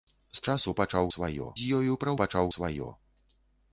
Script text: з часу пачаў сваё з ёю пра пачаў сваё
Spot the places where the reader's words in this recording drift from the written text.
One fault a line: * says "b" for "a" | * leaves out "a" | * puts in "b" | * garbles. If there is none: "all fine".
all fine